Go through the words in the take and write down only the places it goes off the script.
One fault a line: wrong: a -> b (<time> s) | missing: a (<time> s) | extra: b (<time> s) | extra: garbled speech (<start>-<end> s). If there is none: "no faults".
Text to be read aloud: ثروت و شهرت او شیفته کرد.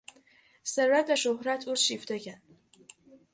no faults